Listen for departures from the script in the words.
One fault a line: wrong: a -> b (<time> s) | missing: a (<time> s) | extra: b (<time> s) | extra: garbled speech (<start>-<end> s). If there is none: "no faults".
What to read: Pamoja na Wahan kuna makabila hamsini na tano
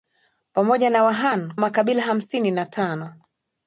missing: kuna (1.5 s)